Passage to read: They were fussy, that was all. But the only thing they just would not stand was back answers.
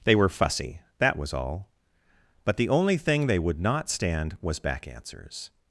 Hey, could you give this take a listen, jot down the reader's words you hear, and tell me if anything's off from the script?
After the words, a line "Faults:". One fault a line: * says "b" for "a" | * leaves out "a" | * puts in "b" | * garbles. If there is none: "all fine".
They were fussy, that was all. But the only thing they would not stand was back answers.
Faults:
* leaves out "just"